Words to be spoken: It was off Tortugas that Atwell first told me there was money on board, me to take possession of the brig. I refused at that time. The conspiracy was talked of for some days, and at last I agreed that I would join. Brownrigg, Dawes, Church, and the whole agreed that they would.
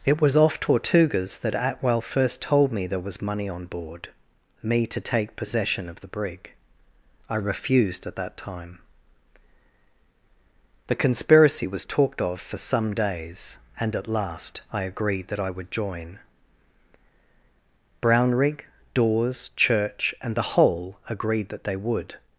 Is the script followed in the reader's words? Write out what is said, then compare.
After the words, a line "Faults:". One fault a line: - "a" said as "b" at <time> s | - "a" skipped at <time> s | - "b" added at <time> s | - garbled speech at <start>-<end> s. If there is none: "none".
It was off Tortugas that Atwell first told me there was money on board, me to take possession of the brig. I refused at that time. The conspiracy was talked of for some days, and at last I agreed that I would join. Brownrigg, Dawes, Church, and the whole agreed that they would.
Faults:
none